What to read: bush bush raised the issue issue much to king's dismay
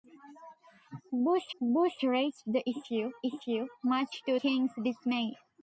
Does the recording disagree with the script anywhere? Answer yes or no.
no